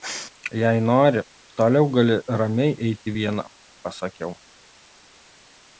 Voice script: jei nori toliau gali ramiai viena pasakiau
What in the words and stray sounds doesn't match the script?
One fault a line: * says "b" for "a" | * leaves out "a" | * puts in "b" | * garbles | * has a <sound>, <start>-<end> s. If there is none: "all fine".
* puts in "eiti"